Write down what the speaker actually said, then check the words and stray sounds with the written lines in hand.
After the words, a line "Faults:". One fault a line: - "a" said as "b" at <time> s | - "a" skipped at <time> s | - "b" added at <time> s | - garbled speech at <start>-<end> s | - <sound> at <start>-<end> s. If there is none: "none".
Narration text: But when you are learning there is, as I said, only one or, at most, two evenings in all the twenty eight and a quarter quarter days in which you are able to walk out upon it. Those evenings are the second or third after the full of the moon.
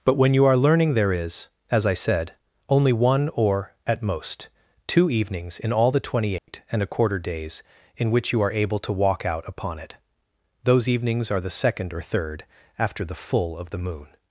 But when you are learning there is, as I said, only one or, at most, two evenings in all the twenty eight and a quarter days in which you are able to walk out upon it. Those evenings are the second or third after the full of the moon.
Faults:
- dropout at 6.4-6.5 s
- "quarter" skipped at 7.2 s